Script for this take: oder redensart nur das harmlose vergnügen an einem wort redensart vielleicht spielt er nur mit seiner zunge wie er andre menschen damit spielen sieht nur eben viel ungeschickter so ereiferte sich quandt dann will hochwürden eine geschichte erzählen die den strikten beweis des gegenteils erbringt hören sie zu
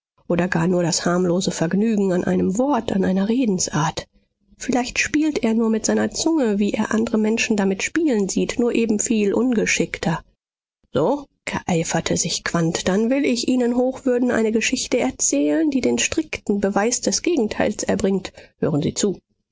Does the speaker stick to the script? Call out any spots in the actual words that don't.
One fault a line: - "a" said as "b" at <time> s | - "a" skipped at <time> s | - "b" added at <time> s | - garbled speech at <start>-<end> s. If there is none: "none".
- "redensart" said as "gar" at 0.5 s
- "an einer" added at 2.9 s
- "ich ihnen" added at 13.3 s